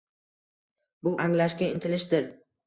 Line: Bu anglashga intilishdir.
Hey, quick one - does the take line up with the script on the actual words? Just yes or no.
yes